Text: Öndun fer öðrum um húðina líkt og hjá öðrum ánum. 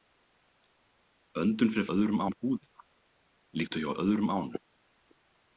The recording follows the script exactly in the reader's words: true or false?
true